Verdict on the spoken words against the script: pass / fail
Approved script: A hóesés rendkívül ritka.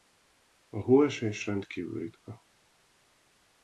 pass